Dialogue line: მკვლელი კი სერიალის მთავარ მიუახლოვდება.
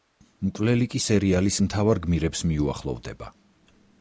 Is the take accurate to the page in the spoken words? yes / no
no